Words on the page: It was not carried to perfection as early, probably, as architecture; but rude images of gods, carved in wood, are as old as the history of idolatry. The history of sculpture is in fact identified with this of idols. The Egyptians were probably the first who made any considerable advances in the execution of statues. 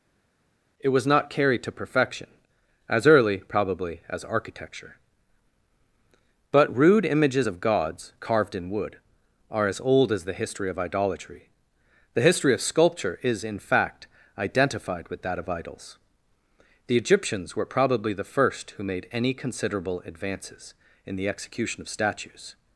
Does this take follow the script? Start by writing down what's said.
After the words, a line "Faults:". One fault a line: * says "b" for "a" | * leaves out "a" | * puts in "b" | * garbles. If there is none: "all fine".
It was not carried to perfection as early, probably, as architecture; but rude images of gods, carved in wood, are as old as the history of idolatry. The history of sculpture is in fact identified with that of idols. The Egyptians were probably the first who made any considerable advances in the execution of statues.
Faults:
* says "that" for "this"